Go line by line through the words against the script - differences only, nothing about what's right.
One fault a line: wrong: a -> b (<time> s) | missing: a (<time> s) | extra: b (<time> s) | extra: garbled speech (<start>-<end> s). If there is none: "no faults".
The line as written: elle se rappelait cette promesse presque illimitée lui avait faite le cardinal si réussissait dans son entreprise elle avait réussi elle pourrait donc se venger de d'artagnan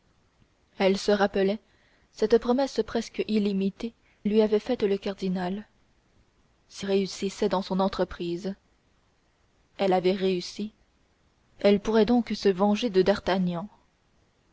no faults